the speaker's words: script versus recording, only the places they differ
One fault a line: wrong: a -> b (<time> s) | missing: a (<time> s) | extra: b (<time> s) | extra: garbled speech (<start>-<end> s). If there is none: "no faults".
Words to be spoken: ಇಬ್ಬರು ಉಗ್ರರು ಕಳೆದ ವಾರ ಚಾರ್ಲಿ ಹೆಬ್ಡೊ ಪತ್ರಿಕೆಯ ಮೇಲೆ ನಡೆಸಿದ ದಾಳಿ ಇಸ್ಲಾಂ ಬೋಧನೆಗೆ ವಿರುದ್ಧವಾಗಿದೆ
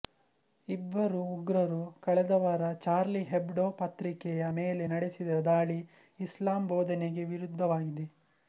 no faults